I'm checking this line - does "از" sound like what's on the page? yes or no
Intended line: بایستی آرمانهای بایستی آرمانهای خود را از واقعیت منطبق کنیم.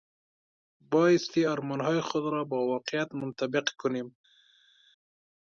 no